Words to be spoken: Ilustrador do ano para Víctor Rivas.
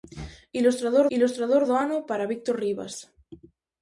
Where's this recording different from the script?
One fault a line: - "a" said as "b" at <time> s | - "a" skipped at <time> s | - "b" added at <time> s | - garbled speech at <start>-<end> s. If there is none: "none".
- "ilustrador" added at 1.2 s